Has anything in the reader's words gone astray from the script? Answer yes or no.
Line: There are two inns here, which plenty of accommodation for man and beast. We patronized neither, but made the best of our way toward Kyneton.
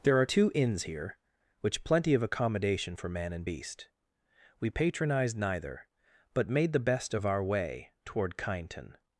no